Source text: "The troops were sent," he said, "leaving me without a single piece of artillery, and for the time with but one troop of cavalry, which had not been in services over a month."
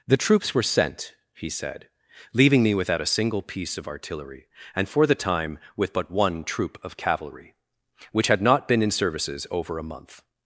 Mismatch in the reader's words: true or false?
false